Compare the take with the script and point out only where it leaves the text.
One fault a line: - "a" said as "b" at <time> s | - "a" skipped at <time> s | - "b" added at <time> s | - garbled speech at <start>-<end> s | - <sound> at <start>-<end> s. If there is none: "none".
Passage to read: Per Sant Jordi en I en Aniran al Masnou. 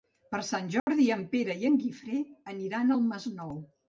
- dropout at 0.8-0.9 s
- "Pere" added at 1.3 s
- "Guifré" added at 1.8 s